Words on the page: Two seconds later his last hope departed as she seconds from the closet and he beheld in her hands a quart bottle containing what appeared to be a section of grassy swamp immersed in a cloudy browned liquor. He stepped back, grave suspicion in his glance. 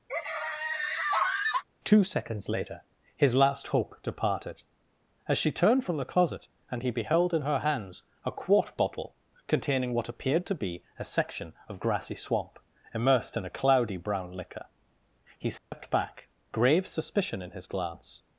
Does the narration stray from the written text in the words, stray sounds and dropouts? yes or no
yes